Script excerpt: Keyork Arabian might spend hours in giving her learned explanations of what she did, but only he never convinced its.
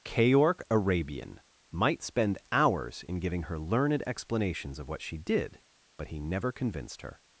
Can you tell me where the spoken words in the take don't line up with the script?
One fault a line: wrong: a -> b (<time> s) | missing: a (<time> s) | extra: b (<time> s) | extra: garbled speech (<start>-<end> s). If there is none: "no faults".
missing: only (6.1 s)
wrong: its -> her (7.0 s)